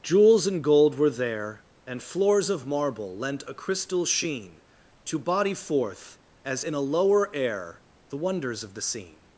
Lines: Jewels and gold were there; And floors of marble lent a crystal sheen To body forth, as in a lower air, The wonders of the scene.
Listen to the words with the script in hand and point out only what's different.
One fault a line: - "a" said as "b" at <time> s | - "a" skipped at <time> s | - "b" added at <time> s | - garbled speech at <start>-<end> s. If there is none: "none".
none